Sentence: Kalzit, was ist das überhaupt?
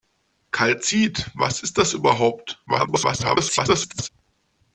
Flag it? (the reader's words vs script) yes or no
yes